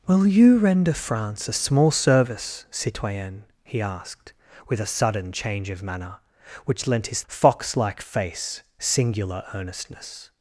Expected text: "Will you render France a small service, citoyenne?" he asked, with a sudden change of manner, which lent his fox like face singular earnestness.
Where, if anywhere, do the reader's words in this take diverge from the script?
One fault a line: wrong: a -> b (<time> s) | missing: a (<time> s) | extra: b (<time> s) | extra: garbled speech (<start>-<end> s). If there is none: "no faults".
no faults